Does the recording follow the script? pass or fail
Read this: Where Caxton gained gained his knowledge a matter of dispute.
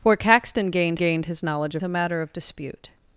pass